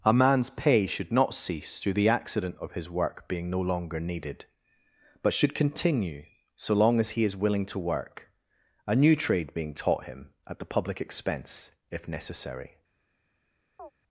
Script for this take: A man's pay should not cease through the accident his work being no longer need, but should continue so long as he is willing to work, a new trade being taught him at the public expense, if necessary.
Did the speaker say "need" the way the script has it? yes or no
no